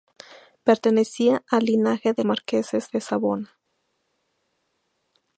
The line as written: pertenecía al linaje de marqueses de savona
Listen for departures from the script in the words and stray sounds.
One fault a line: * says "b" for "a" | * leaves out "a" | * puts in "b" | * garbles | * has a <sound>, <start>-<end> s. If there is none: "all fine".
all fine